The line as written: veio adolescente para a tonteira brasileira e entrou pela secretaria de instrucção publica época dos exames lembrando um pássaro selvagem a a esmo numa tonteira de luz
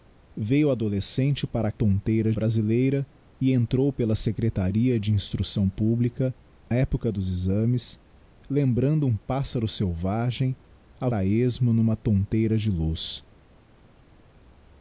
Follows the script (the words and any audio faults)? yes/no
yes